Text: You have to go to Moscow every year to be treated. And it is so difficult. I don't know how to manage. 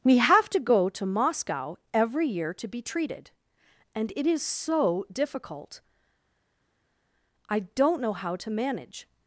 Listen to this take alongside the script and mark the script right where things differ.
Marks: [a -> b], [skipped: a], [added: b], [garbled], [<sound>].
[You -> We] have to go to Moscow every year to be treated. And it is so difficult. I don't know how to manage.